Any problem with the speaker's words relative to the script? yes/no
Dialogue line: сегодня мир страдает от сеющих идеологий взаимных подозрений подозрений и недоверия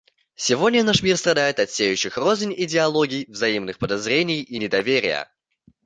yes